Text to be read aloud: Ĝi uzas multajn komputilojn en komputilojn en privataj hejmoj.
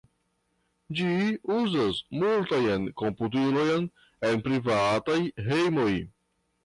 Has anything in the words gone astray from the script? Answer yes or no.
yes